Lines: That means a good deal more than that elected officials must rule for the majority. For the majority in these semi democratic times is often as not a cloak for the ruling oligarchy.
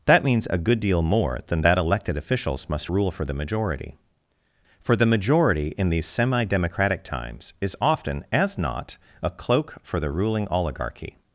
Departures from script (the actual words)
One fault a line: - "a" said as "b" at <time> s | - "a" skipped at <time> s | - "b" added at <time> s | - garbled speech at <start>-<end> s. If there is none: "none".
none